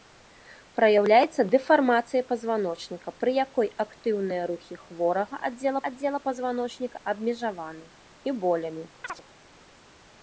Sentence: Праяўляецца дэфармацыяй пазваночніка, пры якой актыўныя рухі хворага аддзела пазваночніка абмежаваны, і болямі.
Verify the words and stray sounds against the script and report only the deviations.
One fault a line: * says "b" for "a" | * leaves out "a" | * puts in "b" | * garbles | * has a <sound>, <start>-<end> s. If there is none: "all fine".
* puts in "аддзела"
* has a chirp, 9.0-9.2 s